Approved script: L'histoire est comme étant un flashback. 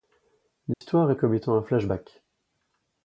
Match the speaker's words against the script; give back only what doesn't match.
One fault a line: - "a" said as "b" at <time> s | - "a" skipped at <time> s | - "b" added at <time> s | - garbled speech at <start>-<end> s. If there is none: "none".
none